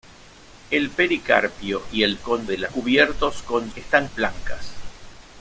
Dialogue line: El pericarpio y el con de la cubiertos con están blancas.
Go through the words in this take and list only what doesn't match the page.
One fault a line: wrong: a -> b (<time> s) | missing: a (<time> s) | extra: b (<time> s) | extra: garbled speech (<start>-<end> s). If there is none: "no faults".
no faults